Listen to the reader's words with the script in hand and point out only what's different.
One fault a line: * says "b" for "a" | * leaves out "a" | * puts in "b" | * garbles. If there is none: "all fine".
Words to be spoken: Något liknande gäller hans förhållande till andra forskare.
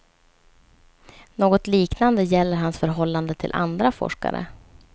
all fine